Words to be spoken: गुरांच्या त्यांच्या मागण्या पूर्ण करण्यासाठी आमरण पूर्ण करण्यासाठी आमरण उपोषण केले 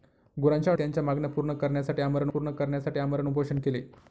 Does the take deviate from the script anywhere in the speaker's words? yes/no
no